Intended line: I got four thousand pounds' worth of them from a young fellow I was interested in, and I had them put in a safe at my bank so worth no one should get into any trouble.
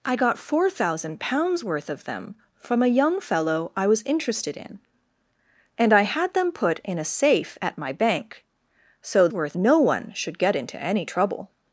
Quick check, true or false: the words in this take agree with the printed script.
true